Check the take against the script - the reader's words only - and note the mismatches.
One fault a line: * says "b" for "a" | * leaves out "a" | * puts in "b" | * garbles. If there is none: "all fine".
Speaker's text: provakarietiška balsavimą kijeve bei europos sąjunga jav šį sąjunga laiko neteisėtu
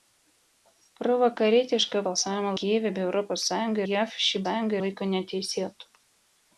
all fine